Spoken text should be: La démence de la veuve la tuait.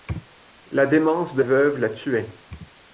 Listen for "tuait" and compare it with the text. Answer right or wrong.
right